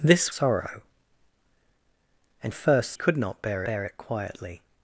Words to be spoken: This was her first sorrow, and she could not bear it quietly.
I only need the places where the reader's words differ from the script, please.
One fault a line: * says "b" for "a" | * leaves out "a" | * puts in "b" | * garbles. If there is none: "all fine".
* leaves out "was her first"
* says "first" for "she"
* puts in "bear"